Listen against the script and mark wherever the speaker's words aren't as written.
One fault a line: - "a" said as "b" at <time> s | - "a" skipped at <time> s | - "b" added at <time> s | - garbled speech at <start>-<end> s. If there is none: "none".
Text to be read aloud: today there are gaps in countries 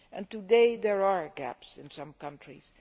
- "some" added at 1.9 s